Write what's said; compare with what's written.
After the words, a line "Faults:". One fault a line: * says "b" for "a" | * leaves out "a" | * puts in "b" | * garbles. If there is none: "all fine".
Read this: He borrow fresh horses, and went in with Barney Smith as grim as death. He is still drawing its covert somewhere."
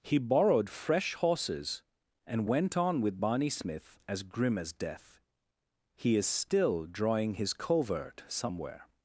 He borrowed fresh horses, and went on with Barney Smith as grim as death. He is still drawing his covert somewhere."
Faults:
* says "borrowed" for "borrow"
* says "on" for "in"
* says "his" for "its"